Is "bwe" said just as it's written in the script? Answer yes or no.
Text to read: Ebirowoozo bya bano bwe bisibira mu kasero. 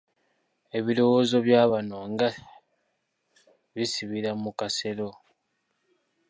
no